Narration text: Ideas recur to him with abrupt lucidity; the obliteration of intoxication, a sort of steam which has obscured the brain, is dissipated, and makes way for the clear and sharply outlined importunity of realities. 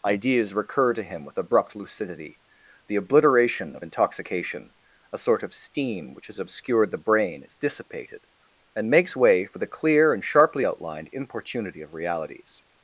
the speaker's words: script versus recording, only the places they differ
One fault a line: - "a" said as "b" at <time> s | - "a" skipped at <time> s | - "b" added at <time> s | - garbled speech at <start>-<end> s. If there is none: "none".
none